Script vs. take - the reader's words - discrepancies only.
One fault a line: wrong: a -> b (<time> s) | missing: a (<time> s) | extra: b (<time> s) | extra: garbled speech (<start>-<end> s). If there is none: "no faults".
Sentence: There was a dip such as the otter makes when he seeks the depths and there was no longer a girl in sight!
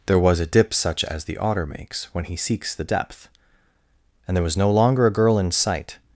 wrong: depths -> depth (2.8 s)